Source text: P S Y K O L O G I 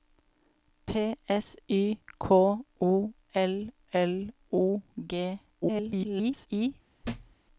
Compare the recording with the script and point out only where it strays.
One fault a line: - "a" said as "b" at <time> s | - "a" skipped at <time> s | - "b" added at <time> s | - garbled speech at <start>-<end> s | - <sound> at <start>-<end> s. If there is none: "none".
- "L" added at 3.9 s
- garbled speech at 5.6-6.5 s
- thud at 7.0-7.4 s